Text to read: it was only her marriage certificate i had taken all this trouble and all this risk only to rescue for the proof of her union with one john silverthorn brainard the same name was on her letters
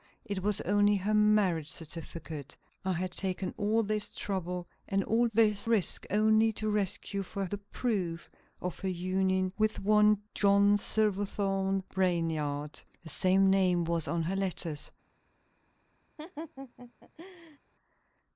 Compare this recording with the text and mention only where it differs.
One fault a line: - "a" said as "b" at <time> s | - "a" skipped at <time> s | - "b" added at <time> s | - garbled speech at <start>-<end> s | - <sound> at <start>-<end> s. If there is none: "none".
- laugh at 16.2-17.6 s